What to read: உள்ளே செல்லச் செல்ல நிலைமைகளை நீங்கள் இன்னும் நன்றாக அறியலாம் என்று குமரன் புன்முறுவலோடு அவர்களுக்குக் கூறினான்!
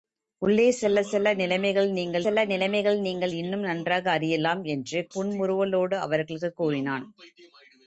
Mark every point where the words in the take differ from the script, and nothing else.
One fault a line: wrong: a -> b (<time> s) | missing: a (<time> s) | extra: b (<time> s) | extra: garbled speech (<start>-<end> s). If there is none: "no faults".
extra: செல்ல நிலைமைகளை நீங்கள் (2.2 s)
missing: குமரன் (5.1 s)